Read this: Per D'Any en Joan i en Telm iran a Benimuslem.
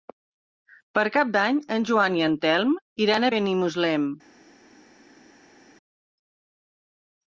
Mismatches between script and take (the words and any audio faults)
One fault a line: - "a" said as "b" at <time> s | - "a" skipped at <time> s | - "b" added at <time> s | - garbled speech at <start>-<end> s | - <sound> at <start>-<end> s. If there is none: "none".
- "Cap" added at 1.2 s